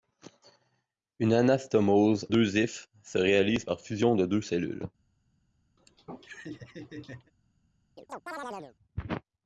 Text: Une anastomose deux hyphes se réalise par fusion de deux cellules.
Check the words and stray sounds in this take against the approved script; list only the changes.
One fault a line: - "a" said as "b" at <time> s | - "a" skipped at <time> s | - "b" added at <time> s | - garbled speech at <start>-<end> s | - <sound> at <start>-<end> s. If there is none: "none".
- laugh at 5.8-7.3 s
- chirp at 8.0-8.8 s